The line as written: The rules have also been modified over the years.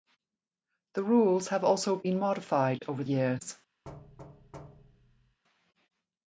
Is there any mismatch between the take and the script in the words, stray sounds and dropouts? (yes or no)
yes